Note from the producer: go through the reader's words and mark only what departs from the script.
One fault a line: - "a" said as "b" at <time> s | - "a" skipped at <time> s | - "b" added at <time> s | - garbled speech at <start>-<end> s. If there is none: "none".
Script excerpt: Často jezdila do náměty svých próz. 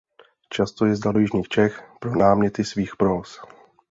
- "jižních Čech pro" added at 1.2 s